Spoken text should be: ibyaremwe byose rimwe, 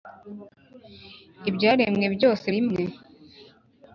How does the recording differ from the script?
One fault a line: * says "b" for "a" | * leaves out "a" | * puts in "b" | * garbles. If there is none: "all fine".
all fine